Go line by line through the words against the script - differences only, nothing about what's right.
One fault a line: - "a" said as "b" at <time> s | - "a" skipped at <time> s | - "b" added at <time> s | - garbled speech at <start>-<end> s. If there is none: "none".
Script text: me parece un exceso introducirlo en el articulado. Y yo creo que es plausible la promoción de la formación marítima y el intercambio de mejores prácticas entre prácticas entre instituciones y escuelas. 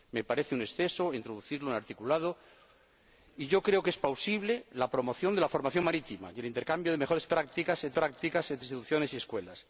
none